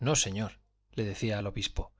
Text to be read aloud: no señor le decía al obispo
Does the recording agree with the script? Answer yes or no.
yes